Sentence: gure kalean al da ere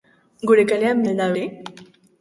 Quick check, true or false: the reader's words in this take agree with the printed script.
true